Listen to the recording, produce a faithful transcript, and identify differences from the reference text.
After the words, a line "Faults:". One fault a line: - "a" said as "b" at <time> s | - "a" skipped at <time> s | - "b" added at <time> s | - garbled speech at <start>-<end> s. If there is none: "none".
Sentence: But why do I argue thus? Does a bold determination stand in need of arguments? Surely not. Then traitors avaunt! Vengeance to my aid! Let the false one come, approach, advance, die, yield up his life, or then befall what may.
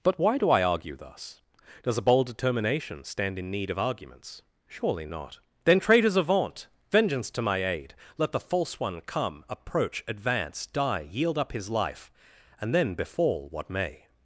But why do I argue thus? Does a bold determination stand in need of arguments? Surely not. Then traitors avaunt! Vengeance to my aid! Let the false one come, approach, advance, die, yield up his life, and then befall what may.
Faults:
- "or" said as "and" at 12.6 s